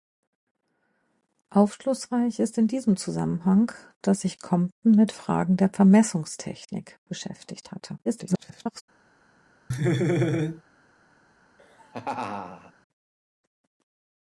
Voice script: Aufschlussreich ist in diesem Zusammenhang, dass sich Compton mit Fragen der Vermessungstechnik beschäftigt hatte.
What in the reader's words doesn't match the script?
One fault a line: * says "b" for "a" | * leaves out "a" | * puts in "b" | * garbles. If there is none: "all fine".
* garbles